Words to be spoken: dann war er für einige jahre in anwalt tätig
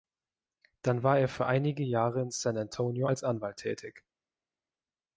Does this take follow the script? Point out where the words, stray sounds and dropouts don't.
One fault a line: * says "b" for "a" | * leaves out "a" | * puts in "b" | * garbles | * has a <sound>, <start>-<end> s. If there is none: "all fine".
* puts in "san antonio als"